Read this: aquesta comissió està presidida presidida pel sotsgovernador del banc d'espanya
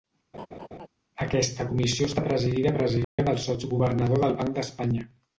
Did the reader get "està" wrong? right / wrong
right